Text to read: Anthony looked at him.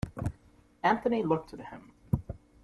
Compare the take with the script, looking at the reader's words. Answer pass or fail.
pass